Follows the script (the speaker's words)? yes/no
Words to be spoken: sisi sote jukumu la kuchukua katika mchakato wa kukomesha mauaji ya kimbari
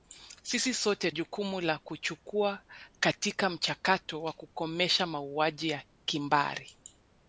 yes